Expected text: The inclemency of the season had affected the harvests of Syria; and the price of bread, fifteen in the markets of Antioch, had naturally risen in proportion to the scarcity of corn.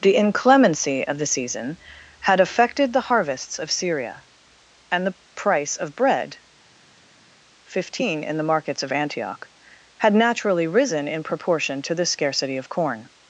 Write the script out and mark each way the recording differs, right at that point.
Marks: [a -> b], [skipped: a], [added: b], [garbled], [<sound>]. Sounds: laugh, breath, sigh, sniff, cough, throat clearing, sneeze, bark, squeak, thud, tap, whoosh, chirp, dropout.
The inclemency of the season had affected the harvests of Syria; and the price of bread, fifteen in the markets of Antioch, had naturally risen in proportion to the scarcity of corn.